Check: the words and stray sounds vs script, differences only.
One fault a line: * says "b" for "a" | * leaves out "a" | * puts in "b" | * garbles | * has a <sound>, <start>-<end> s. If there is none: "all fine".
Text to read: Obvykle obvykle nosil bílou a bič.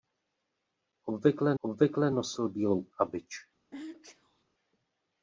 * has a sneeze, 3.7-4.4 s